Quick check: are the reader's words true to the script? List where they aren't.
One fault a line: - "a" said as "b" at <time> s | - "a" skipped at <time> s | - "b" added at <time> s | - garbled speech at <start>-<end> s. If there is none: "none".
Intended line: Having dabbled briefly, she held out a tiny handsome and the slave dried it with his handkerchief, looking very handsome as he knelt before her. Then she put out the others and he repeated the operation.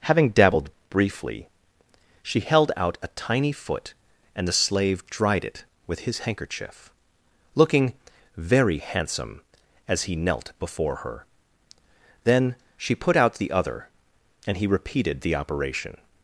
- "handsome" said as "foot" at 3.5 s
- "others" said as "other" at 13.5 s